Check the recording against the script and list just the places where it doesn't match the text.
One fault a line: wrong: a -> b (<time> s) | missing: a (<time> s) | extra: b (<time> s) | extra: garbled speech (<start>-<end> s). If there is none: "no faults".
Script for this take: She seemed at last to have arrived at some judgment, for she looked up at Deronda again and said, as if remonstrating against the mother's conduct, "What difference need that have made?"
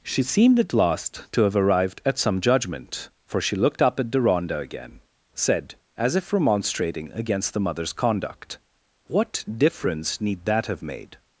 missing: and (5.0 s)